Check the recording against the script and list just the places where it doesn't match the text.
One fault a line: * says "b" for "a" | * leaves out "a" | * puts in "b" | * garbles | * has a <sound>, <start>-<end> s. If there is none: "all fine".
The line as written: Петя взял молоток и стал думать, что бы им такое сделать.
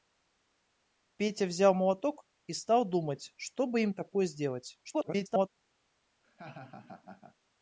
* garbles
* has a laugh, 6.2-7.4 s